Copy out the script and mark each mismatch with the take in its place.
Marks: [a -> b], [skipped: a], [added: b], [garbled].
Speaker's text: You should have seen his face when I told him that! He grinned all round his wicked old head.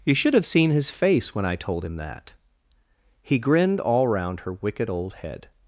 You should have seen his face when I told him that! He grinned all round [his -> her] wicked old head.